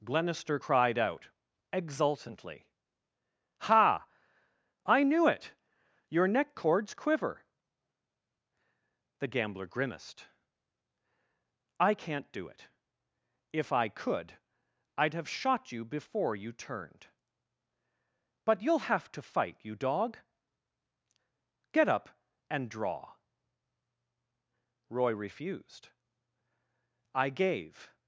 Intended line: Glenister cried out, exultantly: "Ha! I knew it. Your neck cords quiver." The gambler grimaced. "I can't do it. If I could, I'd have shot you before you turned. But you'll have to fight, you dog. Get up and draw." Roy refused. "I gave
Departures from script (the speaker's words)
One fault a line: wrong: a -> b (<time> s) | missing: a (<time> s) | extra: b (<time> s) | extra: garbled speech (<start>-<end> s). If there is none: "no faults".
no faults